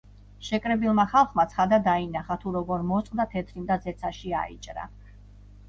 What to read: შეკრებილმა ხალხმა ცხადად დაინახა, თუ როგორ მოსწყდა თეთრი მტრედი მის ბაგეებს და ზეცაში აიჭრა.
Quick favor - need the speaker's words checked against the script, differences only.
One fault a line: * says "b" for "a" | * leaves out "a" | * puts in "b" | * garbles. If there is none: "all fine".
* leaves out "მტრედი მის ბაგეებს"